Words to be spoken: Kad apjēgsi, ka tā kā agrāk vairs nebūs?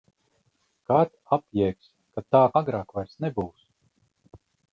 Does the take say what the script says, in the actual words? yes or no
no